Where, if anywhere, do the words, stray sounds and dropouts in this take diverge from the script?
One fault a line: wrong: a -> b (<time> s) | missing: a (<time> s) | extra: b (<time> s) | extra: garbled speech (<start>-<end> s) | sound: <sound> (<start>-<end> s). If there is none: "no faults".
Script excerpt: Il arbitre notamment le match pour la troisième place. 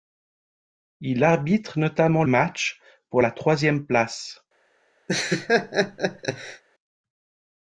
missing: le (2.2 s)
sound: laugh (5.1-6.6 s)